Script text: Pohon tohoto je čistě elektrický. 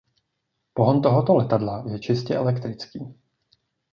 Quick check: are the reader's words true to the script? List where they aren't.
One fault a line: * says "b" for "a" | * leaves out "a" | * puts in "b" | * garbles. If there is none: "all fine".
* puts in "letadla"